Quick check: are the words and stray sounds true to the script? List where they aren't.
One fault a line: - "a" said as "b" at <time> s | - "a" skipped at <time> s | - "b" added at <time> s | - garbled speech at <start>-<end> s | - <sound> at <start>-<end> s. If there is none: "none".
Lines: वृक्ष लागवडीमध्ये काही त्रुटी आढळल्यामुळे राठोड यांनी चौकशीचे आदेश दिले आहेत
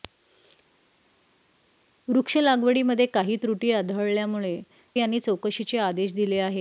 - "राठोड" skipped at 4.6 s